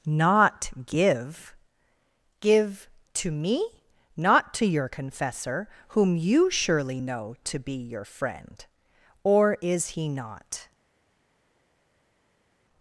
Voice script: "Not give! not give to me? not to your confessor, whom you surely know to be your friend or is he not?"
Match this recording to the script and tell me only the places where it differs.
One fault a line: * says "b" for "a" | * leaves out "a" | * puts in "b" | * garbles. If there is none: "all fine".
* leaves out "not"